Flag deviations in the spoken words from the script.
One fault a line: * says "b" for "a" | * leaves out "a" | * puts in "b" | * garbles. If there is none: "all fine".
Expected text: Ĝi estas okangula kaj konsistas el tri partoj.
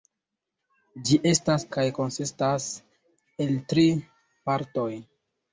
* leaves out "okangula"